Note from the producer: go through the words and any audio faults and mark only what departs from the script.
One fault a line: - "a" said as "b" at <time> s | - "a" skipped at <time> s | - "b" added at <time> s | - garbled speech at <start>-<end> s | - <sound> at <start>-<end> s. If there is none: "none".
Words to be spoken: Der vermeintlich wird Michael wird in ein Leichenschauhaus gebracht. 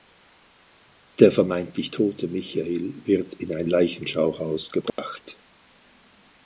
- "wird" said as "tote" at 1.9 s
- dropout at 4.9-5.0 s